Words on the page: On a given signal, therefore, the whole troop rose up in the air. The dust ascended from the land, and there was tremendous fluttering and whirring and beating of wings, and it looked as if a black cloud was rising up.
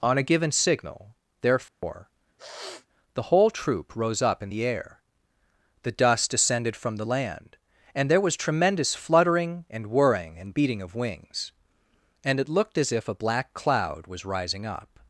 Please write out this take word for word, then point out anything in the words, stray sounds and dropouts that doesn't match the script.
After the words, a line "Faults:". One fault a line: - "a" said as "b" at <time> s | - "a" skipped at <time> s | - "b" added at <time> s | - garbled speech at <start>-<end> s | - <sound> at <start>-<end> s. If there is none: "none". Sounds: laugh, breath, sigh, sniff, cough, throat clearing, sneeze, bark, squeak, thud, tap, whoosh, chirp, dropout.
On a given signal, therefore, the whole troop rose up in the air. The dust descended from the land, and there was tremendous fluttering and whirring and beating of wings, and it looked as if a black cloud was rising up.
Faults:
- dropout at 1.7-1.8 s
- sniff at 2.4-2.9 s
- "ascended" said as "descended" at 6.3 s